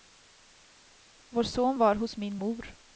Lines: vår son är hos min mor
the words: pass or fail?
fail